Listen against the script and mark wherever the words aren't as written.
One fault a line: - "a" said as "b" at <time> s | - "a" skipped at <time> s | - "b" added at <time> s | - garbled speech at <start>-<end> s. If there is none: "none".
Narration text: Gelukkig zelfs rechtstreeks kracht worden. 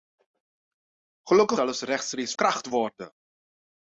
none